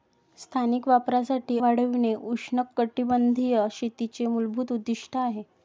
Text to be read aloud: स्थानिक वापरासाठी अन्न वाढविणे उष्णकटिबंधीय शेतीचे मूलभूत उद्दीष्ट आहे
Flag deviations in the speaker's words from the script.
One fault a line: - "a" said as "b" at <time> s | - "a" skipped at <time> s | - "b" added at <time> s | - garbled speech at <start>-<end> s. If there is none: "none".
- "अन्न" skipped at 1.6 s